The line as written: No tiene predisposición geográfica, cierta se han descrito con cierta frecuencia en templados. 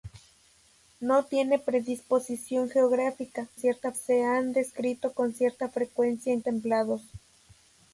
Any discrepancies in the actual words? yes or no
no